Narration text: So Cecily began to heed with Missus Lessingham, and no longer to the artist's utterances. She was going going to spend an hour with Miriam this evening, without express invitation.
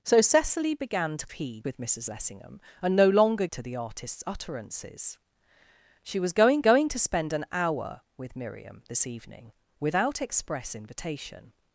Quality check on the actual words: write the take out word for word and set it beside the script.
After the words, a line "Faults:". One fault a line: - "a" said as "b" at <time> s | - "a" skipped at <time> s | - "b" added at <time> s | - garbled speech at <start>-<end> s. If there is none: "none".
So Cecily began to heed with Missus Lessingham, and no longer to the artist's utterances. She was going going to spend an hour with Miriam this evening, without express invitation.
Faults:
none